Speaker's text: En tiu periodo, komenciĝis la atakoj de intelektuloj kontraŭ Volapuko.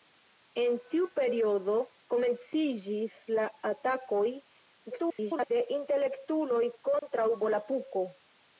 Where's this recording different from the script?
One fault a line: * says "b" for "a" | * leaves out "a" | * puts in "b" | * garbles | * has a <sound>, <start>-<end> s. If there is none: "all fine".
* garbles
* has a dropout, 7.0-7.0 s